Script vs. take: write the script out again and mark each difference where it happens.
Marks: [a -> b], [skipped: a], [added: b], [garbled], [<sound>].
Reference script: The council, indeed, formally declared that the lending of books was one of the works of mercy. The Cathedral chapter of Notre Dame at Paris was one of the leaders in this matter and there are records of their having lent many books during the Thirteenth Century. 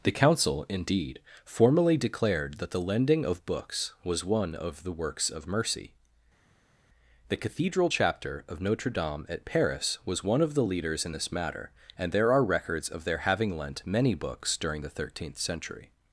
The council, indeed, formally declared that the lending of books was one of the works of mercy. The Cathedral chapter of Notre Dame at Paris was one of the leaders in this matter and there are records of their having lent many books during the Thirteenth Century.